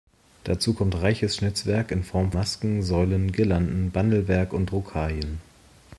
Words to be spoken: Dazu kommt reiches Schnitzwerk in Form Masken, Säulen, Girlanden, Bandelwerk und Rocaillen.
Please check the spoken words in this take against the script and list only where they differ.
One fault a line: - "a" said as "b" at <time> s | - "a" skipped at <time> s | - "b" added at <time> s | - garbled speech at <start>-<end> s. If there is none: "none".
none